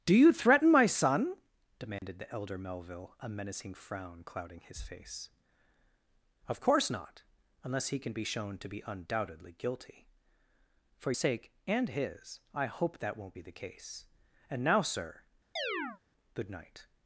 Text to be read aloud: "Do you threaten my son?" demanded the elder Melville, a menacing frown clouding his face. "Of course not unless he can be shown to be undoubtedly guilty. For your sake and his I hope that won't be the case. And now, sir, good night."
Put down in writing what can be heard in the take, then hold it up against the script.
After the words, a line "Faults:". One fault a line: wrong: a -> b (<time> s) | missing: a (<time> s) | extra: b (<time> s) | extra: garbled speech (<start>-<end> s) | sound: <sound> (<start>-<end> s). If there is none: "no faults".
"Do you threaten my son?" demanded the elder Melville, a menacing frown clouding his face. "Of course not unless he can be shown to be undoubtedly guilty. For sake and his I hope that won't be the case. And now, sir, good night."
Faults:
sound: dropout (2.0-2.0 s)
missing: your (11.1 s)
sound: chirp (15.6-16.0 s)